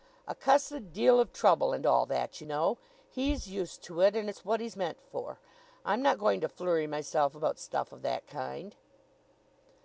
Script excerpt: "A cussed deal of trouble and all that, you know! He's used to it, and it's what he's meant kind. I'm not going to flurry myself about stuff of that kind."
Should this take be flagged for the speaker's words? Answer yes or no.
yes